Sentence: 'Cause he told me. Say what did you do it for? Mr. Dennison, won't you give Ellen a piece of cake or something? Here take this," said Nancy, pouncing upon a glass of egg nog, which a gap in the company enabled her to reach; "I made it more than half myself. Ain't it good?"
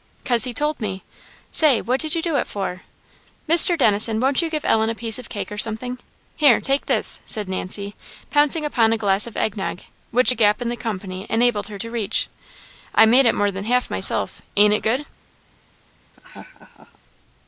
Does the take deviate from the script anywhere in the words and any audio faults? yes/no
yes